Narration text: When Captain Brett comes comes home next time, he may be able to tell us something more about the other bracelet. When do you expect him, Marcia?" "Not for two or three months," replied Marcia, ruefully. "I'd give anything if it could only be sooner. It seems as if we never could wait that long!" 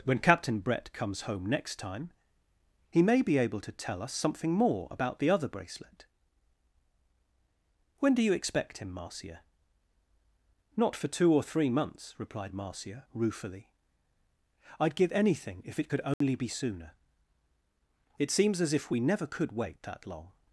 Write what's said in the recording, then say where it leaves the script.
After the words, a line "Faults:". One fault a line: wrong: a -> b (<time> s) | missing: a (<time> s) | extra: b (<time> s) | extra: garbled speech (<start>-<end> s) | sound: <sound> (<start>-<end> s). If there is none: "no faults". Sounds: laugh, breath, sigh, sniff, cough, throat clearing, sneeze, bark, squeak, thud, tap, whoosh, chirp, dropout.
When Captain Brett comes home next time, he may be able to tell us something more about the other bracelet. When do you expect him, Marcia?" "Not for two or three months," replied Marcia, ruefully. "I'd give anything if it could only be sooner. It seems as if we never could wait that long!"
Faults:
missing: comes (1.2 s)
sound: dropout (16.1-16.2 s)